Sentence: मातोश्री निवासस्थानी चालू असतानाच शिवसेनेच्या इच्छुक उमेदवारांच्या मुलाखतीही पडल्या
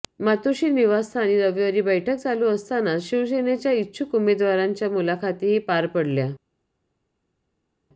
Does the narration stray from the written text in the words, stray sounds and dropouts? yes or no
yes